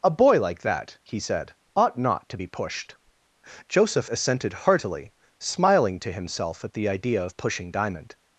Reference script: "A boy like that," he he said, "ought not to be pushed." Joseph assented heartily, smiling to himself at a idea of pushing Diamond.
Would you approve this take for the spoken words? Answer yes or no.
no